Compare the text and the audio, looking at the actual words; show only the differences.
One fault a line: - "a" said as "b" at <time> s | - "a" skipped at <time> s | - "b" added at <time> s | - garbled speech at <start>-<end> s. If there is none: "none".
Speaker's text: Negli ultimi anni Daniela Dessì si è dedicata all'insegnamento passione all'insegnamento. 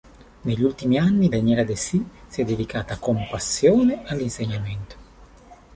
- "all'insegnamento" said as "con" at 3.0 s